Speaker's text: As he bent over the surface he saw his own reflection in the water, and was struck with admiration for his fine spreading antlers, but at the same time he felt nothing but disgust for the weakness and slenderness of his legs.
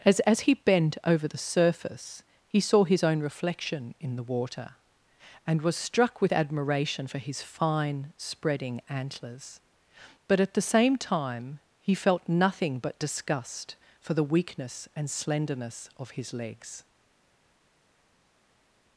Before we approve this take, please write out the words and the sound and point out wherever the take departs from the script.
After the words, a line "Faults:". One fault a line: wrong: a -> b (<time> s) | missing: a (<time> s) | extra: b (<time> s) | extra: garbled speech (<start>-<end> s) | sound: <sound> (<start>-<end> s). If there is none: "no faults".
As as he bent over the surface he saw his own reflection in the water, and was struck with admiration for his fine spreading antlers, but at the same time he felt nothing but disgust for the weakness and slenderness of his legs.
Faults:
extra: as (0.2 s)